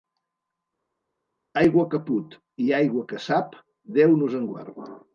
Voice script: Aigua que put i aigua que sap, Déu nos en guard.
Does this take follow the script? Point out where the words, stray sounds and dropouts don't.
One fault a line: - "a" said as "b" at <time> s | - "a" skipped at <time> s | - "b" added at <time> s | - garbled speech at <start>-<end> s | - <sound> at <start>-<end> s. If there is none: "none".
none